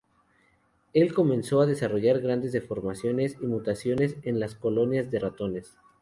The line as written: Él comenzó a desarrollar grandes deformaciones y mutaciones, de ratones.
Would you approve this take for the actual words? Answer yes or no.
no